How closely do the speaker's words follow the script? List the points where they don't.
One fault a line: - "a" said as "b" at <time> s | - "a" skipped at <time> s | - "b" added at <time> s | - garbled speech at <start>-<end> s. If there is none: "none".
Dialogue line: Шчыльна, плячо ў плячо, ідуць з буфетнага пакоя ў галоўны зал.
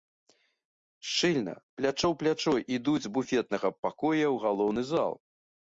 none